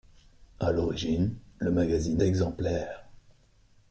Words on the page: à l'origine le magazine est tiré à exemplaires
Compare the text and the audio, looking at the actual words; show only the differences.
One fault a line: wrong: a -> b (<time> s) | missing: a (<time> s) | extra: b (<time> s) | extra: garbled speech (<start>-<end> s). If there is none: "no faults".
missing: est tiré à (2.2 s)